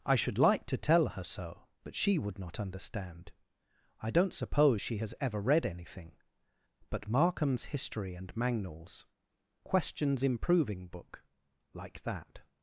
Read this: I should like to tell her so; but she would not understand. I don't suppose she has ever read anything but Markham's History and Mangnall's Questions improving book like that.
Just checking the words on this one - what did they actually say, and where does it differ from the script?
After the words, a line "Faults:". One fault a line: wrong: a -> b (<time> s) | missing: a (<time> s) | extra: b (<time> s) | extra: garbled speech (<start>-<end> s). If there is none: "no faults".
I should like to tell her so; but she would not understand. I don't suppose she has ever read anything but Markham's History and Mangnall's Questions improving book like that.
Faults:
no faults